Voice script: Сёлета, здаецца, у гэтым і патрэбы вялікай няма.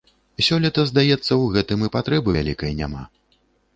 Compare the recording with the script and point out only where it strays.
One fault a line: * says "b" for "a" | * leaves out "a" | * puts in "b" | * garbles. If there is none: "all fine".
all fine